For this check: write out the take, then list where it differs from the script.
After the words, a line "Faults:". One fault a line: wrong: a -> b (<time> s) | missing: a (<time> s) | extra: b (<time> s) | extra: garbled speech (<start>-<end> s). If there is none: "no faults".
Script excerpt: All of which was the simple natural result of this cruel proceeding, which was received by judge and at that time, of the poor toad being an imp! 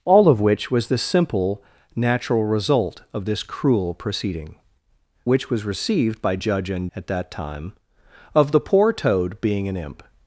All of which was the simple natural result of this cruel proceeding, which was received by judge and at that time, of the poor toad being an imp!
Faults:
no faults